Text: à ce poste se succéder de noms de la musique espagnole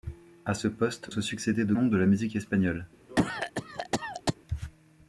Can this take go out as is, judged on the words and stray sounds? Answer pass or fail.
fail